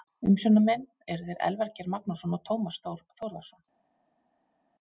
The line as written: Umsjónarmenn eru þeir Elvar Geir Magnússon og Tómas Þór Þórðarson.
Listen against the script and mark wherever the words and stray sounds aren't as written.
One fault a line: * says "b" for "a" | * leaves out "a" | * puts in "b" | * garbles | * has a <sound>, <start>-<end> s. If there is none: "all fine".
all fine